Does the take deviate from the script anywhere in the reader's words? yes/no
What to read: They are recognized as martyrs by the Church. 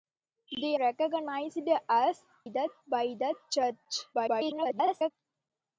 yes